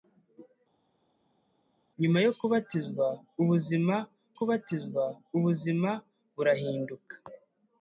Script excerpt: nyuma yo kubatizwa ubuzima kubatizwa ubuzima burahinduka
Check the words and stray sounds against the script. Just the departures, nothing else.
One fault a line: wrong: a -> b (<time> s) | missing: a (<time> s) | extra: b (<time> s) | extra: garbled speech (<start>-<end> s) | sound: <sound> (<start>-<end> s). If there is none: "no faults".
no faults